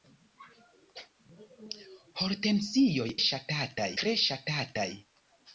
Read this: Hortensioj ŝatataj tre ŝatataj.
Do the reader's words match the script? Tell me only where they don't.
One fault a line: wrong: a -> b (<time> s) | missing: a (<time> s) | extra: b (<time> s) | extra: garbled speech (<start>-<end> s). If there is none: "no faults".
no faults